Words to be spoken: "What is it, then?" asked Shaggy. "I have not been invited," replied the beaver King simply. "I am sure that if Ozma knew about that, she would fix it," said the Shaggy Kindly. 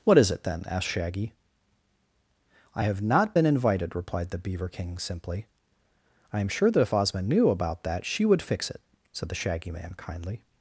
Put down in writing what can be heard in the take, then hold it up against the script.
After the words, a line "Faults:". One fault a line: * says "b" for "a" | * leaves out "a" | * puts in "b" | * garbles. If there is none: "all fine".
"What is it, then?" asked Shaggy. "I have not been invited," replied the beaver King simply. "I am sure that if Ozma knew about that, she would fix it," said the Shaggy Man kindly.
Faults:
* puts in "Man"